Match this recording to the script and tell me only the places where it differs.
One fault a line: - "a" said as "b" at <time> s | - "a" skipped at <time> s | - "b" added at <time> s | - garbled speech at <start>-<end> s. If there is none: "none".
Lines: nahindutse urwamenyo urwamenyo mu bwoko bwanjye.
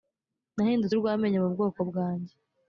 - "urwamenyo" skipped at 1.4 s